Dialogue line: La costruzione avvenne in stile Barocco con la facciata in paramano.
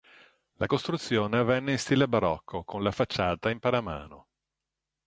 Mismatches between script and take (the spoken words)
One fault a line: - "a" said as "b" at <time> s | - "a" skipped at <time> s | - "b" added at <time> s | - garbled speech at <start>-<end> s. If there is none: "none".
none